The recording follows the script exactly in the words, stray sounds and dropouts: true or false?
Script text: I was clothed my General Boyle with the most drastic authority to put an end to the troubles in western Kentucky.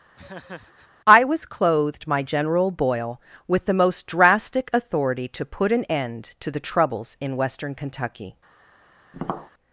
false